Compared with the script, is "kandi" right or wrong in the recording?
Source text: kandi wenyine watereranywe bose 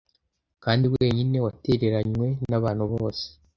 right